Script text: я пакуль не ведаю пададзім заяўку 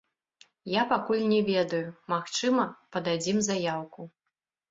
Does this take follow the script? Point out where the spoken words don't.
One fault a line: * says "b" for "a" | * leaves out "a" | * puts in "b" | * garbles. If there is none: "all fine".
* puts in "магчыма"